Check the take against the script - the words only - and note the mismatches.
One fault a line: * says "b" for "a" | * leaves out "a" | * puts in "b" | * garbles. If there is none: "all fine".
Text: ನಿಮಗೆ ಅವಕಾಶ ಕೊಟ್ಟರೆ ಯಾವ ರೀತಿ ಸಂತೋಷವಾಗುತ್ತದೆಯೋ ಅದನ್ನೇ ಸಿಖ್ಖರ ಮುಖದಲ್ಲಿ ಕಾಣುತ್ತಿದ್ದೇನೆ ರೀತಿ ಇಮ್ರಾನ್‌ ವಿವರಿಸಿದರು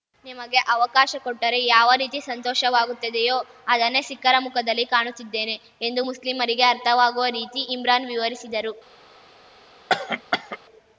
* puts in "ಎಂದು ಮುಸ್ಲಿಮರಿಗೆ ಅರ್ಥವಾಗುವ"